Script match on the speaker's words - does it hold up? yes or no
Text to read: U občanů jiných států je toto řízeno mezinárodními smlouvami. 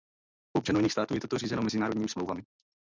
yes